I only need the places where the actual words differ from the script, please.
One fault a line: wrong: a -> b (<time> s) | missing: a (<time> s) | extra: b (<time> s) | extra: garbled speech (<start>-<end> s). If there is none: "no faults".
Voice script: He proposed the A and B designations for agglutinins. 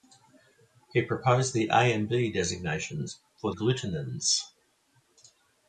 no faults